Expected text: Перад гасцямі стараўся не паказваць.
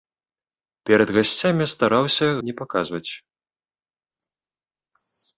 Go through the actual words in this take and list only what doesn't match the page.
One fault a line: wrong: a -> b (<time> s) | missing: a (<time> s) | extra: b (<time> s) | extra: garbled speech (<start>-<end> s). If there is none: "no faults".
no faults